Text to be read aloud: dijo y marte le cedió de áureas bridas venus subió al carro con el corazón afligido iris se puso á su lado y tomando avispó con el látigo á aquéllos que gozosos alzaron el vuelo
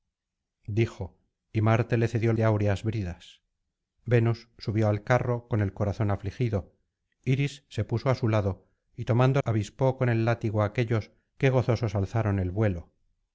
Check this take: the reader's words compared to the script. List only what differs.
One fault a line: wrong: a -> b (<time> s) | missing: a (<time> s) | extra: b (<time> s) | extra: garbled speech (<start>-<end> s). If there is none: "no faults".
no faults